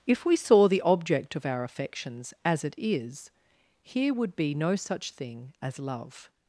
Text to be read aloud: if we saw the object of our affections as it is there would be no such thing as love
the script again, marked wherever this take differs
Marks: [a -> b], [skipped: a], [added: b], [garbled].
if we saw the object of our affections as it is [there -> here] would be no such thing as love